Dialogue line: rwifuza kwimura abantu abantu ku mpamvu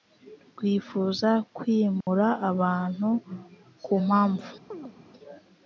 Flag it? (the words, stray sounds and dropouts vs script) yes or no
yes